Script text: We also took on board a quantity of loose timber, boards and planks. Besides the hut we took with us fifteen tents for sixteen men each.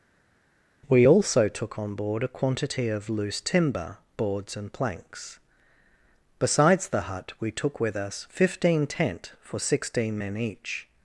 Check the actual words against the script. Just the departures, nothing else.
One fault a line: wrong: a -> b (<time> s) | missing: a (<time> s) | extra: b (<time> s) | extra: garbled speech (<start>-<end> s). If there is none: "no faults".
wrong: tents -> tent (8.8 s)